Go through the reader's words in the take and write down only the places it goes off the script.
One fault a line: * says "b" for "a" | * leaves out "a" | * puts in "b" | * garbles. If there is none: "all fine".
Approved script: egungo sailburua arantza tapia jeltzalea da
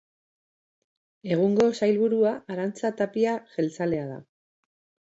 all fine